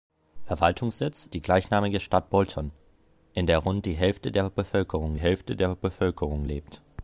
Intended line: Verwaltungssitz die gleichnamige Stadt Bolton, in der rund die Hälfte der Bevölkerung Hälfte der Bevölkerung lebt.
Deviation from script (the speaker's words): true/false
false